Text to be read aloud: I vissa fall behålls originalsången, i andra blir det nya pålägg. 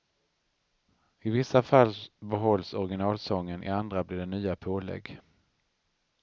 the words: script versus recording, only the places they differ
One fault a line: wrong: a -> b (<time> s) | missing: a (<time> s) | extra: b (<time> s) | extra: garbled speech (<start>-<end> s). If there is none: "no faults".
no faults